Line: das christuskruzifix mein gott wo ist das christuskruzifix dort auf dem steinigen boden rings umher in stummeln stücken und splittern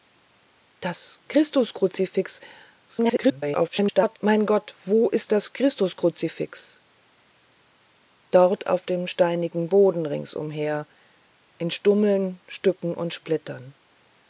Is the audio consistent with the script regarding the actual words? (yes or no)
no